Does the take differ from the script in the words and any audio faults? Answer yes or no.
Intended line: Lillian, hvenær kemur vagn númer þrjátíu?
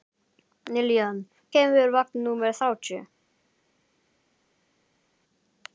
yes